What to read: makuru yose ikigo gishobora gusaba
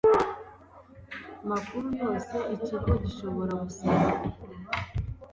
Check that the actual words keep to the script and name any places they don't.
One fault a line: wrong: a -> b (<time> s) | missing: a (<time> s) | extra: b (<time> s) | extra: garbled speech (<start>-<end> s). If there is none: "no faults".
no faults